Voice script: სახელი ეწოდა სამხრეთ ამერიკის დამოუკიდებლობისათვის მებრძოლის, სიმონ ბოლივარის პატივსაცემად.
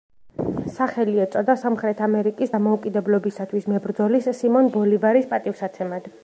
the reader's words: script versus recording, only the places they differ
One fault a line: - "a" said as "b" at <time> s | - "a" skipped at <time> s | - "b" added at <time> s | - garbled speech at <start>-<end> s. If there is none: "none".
none